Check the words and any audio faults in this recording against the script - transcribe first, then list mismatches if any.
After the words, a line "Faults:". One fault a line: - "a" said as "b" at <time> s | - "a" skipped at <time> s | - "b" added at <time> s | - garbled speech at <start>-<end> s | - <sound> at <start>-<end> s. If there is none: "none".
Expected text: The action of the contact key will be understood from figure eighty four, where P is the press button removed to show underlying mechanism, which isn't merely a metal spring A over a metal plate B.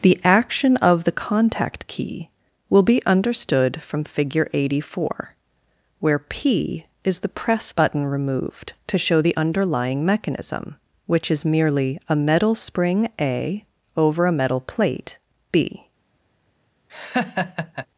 The action of the contact key will be understood from figure eighty four, where P is the press button removed to show the underlying mechanism, which is merely a metal spring A over a metal plate B.
Faults:
- "the" added at 9.2 s
- "isn't" said as "is" at 11.3 s
- laugh at 16.9-17.9 s